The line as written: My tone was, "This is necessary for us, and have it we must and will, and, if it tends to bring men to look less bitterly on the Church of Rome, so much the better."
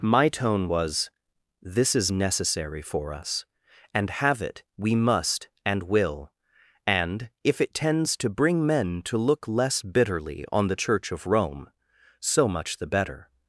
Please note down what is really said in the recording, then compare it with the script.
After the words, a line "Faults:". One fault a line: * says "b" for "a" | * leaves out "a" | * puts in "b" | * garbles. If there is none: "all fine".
My tone was, "This is necessary for us, and have it we must and will, and, if it tends to bring men to look less bitterly on the Church of Rome, so much the better."
Faults:
all fine